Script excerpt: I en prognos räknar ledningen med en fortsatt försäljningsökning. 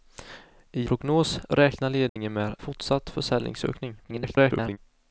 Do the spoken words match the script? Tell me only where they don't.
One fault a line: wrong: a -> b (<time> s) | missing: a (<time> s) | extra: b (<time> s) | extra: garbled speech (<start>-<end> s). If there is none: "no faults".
missing: en (0.9 s)
missing: en (2.5 s)
extra: garbled speech (4.0-4.8 s)